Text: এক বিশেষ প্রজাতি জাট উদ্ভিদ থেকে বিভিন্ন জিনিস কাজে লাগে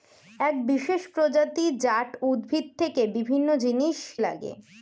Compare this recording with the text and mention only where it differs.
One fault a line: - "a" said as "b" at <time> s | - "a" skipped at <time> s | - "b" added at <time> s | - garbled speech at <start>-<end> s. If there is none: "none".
- "কাজে" skipped at 4.0 s